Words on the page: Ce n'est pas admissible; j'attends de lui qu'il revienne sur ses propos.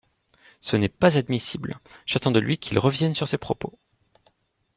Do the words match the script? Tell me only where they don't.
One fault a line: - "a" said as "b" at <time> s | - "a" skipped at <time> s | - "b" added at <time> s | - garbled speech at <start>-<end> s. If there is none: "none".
none